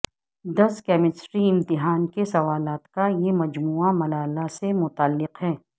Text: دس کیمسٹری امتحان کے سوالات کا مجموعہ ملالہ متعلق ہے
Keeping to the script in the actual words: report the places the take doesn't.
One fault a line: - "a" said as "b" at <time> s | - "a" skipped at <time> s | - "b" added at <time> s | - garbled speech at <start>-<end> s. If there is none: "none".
- "یہ" added at 3.2 s
- "سے" added at 4.5 s